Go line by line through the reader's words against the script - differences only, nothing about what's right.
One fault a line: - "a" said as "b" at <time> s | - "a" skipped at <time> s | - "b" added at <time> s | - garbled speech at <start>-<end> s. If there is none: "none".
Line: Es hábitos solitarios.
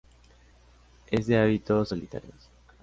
- "de" added at 1.3 s